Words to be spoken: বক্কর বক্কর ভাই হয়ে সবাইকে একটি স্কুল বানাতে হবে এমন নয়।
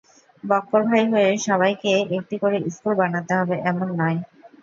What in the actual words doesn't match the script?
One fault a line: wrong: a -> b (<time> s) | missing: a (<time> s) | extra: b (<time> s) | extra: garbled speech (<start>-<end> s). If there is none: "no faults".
missing: বক্কর (0.8 s)
extra: করে (2.4 s)